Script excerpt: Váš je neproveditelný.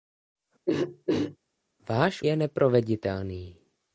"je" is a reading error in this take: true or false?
false